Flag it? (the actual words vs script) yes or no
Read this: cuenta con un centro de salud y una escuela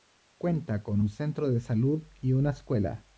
no